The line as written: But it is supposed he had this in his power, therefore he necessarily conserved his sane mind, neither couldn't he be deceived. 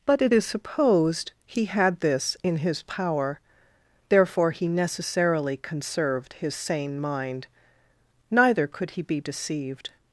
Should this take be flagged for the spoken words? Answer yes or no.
yes